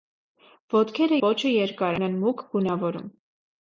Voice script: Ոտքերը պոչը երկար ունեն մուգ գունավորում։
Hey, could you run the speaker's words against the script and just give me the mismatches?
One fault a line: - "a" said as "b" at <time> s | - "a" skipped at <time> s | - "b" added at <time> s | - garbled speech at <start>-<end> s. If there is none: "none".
none